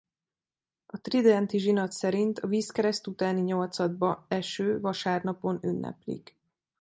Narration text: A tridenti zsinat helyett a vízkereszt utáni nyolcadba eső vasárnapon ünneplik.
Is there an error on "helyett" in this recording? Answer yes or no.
yes